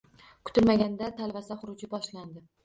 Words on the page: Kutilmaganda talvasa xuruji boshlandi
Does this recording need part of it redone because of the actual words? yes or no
no